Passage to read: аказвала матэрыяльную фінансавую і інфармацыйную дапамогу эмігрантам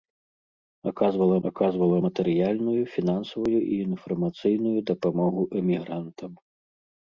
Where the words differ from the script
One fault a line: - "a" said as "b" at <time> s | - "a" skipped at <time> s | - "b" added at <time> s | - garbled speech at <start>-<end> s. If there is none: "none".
- "аказвала" added at 1.5 s